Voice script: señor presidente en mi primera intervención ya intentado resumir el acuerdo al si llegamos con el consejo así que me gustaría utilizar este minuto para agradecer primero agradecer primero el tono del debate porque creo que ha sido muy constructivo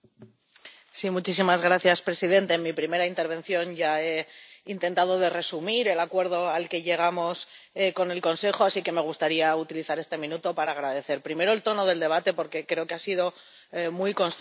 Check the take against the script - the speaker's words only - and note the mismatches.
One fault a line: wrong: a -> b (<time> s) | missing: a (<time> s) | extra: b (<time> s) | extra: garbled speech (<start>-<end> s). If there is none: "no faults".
extra: he (4.0 s)
wrong: si -> que (6.7 s)
missing: agradecer primero (11.5 s)